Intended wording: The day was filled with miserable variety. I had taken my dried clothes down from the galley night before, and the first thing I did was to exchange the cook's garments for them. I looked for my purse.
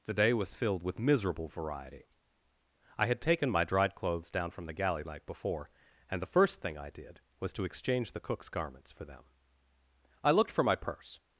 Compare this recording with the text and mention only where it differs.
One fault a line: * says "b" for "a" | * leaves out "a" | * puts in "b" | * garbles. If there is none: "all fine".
all fine